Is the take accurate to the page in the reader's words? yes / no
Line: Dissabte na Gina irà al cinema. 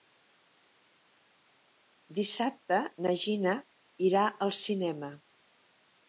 yes